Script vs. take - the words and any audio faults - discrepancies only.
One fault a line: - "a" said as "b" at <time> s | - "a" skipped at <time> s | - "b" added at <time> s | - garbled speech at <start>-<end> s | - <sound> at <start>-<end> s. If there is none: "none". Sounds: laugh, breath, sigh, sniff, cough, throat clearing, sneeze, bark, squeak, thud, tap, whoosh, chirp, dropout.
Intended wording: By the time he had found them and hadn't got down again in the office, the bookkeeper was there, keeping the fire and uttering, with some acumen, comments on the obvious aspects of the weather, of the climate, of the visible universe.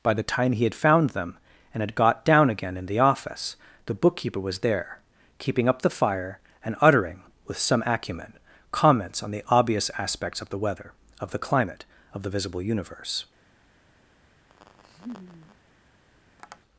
- "hadn't" said as "had" at 1.8 s
- "up" added at 5.7 s
- laugh at 14.5-15.6 s
- tap at 16.4-16.6 s